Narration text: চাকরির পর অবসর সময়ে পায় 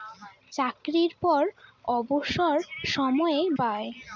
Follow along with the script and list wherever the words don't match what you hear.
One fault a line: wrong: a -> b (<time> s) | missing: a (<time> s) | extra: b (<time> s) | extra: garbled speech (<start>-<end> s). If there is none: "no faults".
no faults